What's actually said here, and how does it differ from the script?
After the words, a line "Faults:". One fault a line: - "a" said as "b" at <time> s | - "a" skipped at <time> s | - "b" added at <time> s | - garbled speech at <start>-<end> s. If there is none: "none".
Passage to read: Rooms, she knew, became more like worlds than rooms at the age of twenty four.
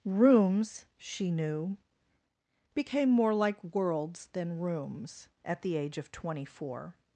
Rooms, she knew, became more like worlds than rooms at the age of twenty four.
Faults:
none